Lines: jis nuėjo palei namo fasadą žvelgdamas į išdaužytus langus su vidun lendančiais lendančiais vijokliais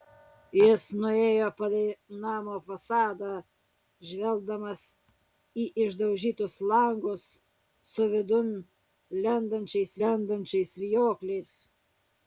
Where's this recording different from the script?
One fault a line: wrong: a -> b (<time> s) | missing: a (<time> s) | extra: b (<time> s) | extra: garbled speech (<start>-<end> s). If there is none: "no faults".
no faults